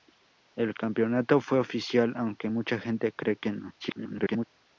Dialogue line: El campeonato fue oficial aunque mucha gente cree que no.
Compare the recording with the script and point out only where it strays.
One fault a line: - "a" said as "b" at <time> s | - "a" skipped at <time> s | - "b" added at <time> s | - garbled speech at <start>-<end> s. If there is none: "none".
- garbled speech at 3.8-4.5 s